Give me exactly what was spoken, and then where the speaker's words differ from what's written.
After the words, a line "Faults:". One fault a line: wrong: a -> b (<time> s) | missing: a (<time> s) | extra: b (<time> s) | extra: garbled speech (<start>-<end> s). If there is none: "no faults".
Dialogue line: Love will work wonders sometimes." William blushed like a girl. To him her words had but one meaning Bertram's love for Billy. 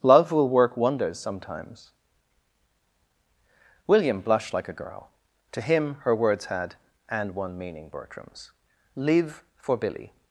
Love will work wonders sometimes." William blushed like a girl. To him her words had and one meaning Bertram's live for Billy.
Faults:
wrong: but -> and (7.1 s)
wrong: love -> live (9.0 s)